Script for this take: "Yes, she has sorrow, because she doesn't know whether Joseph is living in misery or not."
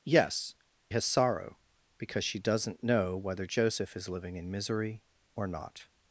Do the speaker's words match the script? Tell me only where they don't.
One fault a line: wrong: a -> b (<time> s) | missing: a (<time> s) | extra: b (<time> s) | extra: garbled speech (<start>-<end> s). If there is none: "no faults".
missing: she (0.6 s)